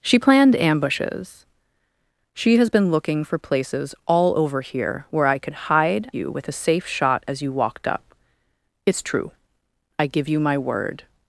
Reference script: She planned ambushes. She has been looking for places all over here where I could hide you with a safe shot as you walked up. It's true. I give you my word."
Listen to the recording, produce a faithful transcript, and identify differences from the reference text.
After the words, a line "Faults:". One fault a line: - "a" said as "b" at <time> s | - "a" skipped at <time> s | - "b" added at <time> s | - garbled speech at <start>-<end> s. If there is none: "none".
She planned ambushes. She has been looking for places all over here where I could hide you with a safe shot as you walked up. It's true. I give you my word."
Faults:
none